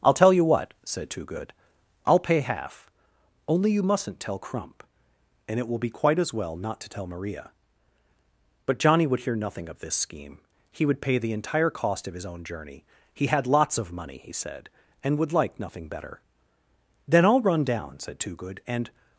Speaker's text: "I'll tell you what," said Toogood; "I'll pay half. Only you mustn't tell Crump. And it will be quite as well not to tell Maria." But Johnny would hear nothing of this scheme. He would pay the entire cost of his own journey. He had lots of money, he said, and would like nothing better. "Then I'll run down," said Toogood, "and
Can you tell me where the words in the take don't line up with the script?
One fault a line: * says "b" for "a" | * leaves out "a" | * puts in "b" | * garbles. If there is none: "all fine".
all fine